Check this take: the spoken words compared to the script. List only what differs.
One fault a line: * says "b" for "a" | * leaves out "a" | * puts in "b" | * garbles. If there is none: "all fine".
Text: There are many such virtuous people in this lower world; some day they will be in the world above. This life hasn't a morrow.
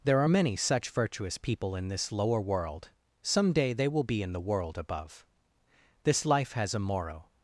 * says "has" for "hasn't"